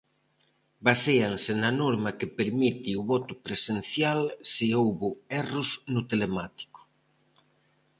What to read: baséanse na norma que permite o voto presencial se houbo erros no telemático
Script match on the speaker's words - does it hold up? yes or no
yes